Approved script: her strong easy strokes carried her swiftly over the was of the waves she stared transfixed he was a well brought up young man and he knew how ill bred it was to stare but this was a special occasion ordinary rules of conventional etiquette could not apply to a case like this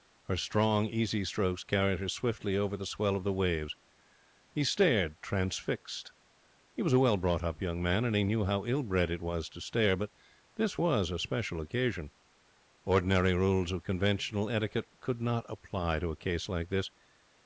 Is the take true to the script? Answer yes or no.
no